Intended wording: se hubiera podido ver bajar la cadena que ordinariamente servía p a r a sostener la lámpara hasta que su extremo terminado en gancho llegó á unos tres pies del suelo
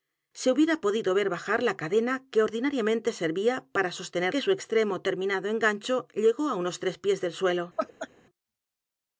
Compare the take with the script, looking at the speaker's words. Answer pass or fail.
fail